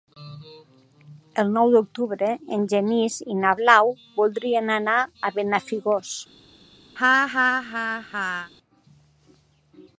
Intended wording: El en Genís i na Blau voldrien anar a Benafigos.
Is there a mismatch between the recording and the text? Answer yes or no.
yes